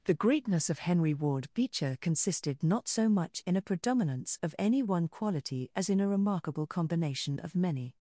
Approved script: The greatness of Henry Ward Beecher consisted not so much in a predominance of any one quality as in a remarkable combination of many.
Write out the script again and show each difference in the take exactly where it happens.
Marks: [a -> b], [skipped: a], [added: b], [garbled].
The greatness of Henry Ward Beecher consisted not so much in a predominance of any one quality as in a remarkable combination of many.